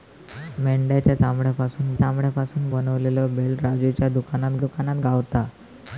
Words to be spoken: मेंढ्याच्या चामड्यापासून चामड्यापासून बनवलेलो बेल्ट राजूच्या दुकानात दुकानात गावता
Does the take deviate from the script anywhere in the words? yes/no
no